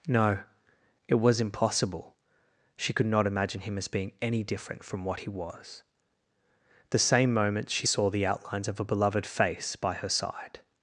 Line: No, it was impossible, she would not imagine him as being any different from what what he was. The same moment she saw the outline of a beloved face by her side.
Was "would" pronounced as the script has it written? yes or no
no